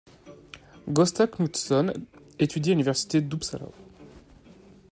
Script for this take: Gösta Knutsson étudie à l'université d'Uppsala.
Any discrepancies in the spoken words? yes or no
no